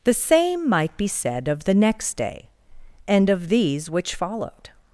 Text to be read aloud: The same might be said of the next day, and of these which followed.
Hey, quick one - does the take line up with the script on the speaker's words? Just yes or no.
yes